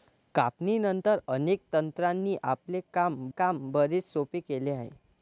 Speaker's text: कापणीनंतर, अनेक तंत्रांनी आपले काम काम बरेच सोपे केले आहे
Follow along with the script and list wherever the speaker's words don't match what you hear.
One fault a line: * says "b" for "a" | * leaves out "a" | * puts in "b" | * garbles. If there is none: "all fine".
all fine